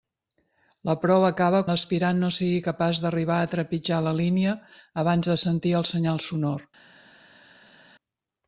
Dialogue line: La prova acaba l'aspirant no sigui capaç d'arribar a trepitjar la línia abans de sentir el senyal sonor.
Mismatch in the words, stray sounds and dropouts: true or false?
false